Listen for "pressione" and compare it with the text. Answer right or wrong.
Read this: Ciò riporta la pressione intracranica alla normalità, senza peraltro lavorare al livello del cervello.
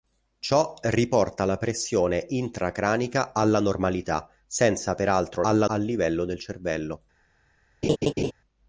right